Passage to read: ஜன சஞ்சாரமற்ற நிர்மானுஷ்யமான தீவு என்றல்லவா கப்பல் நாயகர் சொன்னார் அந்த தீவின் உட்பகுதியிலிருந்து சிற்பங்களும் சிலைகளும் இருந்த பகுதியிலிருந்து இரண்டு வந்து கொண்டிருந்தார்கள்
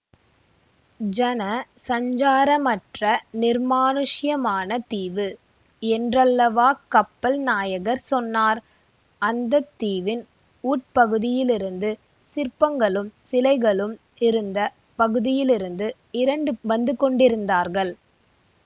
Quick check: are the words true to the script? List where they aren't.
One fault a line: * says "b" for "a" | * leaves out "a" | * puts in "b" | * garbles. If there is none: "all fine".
all fine